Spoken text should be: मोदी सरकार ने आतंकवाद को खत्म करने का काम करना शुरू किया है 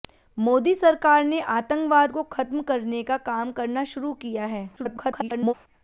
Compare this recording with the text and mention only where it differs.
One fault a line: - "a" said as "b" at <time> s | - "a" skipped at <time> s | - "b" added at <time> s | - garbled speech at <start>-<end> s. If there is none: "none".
- garbled speech at 4.8-5.5 s